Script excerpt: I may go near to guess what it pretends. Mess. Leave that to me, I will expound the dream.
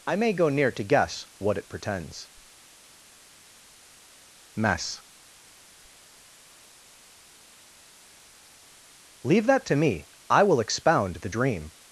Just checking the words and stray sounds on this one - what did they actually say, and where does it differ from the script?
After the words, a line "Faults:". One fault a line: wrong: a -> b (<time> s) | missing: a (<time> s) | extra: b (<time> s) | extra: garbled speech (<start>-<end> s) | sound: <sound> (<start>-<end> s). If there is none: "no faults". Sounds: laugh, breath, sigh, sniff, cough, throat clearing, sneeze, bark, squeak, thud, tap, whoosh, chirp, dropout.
I may go near to guess what it pretends. Mess. Leave that to me, I will expound the dream.
Faults:
no faults